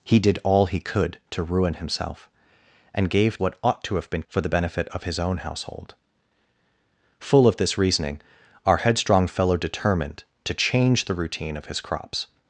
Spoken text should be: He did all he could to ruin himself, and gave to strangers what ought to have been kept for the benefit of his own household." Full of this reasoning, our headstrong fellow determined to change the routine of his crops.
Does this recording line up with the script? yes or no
no